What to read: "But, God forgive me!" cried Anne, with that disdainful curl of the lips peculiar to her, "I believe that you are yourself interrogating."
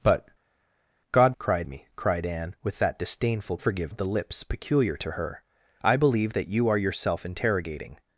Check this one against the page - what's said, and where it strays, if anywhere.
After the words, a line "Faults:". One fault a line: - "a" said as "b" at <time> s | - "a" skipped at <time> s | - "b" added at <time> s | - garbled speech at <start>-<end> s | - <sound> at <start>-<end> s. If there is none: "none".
"But, God cried me!" cried Anne, with that disdainful forgive of the lips peculiar to her, "I believe that you are yourself interrogating."
Faults:
- "forgive" said as "cried" at 1.4 s
- "curl" said as "forgive" at 3.6 s